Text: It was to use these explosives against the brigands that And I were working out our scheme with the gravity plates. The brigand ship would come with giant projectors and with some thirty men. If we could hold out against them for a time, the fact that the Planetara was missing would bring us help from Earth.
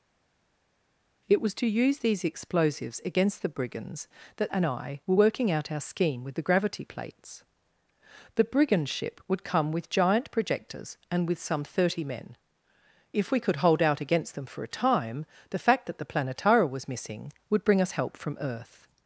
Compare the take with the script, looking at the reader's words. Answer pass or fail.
pass